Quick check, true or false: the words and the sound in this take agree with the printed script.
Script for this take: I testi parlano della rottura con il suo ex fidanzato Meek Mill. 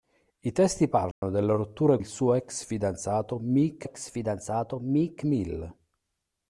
false